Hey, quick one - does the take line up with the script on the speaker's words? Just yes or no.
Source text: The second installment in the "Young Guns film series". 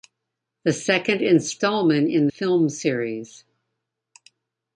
no